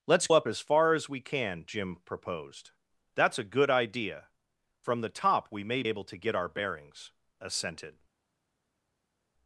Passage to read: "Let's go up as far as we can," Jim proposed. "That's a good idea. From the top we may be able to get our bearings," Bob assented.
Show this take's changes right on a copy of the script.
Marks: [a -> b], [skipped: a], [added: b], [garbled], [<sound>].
"Let's [skipped: go] up as far as we can," Jim proposed. "That's a good idea. From the top we may [skipped: be] able to get our bearings," [skipped: Bob] assented.